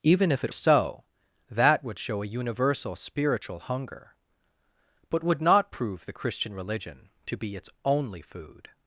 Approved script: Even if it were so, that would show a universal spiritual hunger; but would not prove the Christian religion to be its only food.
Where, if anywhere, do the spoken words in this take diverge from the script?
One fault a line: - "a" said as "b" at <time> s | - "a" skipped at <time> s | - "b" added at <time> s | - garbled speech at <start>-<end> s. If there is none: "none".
- "were" skipped at 0.5 s